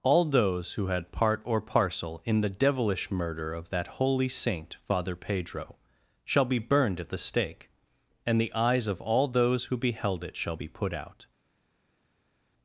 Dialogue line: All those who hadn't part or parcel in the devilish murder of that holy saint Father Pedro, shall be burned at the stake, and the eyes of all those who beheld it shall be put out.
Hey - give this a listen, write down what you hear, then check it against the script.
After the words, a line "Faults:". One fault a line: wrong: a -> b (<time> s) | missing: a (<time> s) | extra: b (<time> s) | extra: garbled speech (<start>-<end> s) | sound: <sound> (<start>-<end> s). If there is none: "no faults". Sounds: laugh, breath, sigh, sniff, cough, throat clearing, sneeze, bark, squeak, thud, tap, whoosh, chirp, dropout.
All those who had part or parcel in the devilish murder of that holy saint Father Pedro, shall be burned at the stake, and the eyes of all those who beheld it shall be put out.
Faults:
wrong: hadn't -> had (0.9 s)